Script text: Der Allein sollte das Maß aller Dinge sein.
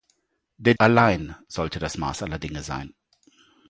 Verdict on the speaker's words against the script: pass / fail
pass